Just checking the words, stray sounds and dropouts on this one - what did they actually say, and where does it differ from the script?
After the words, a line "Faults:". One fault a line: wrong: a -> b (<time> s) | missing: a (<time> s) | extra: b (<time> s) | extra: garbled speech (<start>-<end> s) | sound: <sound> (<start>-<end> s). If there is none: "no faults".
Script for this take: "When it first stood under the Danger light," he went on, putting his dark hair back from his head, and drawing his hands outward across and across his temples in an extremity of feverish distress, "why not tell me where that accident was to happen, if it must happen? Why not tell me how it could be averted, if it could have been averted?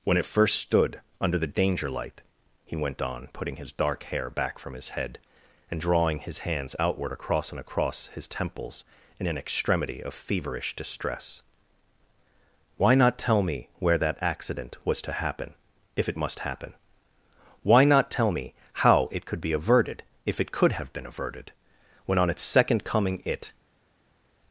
"When it first stood under the Danger light," he went on, putting his dark hair back from his head, and drawing his hands outward across and across his temples in an extremity of feverish distress, "why not tell me where that accident was to happen, if it must happen? Why not tell me how it could be averted, if it could have been averted? When on its second coming it
Faults:
extra: When on its second coming it (22.0 s)